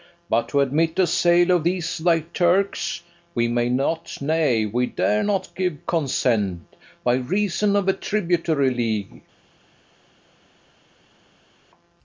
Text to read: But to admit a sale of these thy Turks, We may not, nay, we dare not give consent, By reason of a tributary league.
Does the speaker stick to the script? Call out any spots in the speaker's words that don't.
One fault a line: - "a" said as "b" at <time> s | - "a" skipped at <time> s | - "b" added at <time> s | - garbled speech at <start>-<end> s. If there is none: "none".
none